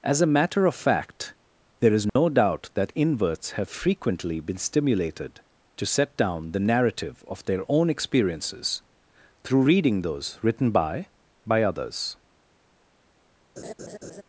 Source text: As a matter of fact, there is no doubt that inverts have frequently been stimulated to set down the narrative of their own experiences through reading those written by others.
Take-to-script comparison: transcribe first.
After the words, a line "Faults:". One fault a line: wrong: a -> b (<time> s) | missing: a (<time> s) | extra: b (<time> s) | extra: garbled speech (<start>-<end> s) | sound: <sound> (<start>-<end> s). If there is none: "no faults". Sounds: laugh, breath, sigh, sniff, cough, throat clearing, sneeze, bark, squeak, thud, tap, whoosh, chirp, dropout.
As a matter of fact, there is no doubt that inverts have frequently been stimulated to set down the narrative of their own experiences through reading those written by by others.
Faults:
sound: dropout (2.1-2.2 s)
extra: by (11.5 s)
sound: laugh (13.6-14.2 s)